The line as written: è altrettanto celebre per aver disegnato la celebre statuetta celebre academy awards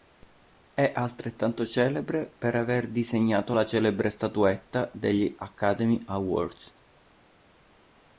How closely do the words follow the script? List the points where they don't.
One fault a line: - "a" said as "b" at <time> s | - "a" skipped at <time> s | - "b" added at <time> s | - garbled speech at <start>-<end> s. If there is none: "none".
- "celebre" said as "degli" at 4.9 s